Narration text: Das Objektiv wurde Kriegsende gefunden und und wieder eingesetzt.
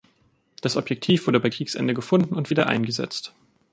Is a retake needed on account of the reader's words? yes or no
yes